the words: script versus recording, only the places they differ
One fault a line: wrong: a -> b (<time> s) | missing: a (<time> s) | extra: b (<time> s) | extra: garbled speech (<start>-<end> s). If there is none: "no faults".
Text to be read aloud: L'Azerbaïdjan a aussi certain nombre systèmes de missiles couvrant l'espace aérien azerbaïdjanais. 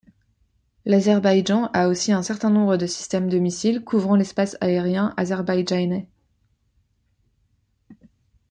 extra: un (2.1 s)
extra: de (2.8 s)